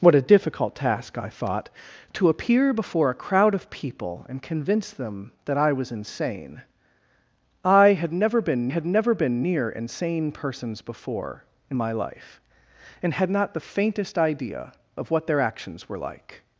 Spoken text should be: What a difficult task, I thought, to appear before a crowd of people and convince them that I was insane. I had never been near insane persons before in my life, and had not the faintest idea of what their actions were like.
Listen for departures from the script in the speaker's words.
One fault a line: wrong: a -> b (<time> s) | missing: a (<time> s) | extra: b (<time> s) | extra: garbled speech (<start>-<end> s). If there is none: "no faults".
extra: had never been (8.7 s)